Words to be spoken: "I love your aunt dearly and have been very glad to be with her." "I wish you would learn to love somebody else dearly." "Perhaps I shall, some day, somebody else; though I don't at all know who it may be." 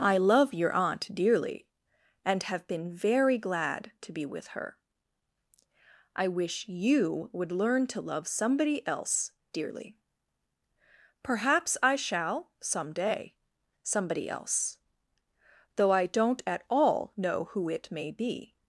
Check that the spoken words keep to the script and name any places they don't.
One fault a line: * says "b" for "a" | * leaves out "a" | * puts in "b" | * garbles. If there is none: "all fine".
all fine